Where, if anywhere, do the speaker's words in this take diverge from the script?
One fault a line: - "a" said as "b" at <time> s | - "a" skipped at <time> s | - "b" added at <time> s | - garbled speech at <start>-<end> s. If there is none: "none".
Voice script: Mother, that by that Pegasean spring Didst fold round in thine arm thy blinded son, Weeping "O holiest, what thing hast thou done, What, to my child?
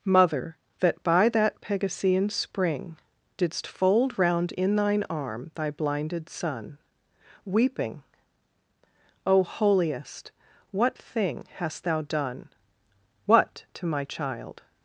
none